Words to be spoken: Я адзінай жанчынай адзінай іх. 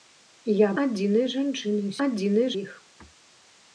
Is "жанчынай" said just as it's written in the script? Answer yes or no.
yes